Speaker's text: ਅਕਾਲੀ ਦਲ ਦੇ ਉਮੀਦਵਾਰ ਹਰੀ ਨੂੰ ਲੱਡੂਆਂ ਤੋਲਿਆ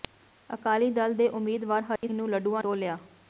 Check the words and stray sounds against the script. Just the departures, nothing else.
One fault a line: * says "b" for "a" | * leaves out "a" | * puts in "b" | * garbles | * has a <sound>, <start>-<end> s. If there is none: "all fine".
* has a dropout, 2.0-2.0 s